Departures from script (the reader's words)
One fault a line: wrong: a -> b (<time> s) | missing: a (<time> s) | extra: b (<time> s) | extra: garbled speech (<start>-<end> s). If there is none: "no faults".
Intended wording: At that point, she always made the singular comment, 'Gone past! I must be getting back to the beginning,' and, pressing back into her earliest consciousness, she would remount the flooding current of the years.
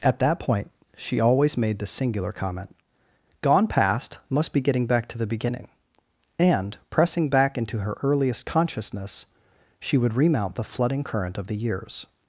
missing: I (4.2 s)